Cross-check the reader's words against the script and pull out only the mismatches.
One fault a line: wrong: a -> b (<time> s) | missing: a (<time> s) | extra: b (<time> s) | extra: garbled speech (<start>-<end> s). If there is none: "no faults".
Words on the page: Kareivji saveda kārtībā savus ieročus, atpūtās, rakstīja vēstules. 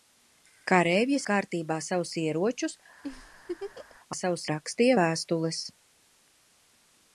missing: saveda (1.2 s)
wrong: atpūtās -> savus (4.2 s)